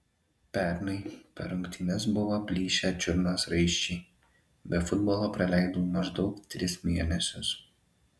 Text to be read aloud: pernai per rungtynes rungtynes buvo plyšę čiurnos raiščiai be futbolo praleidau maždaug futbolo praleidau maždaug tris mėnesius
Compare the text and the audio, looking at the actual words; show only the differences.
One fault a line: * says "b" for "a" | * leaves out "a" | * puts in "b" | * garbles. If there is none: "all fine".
* leaves out "rungtynes"
* leaves out "futbolo praleidau maždaug"